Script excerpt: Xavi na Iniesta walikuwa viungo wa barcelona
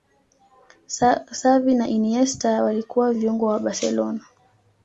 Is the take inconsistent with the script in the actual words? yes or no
no